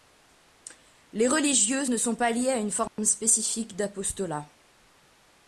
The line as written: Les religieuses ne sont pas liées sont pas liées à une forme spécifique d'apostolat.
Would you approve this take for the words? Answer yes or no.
no